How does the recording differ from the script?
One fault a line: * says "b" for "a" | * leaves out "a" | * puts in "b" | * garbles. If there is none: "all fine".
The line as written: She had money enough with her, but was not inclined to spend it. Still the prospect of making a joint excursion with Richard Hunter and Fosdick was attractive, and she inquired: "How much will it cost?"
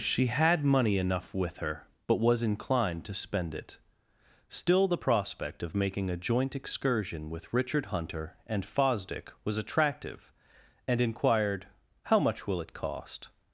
* leaves out "not"
* leaves out "she"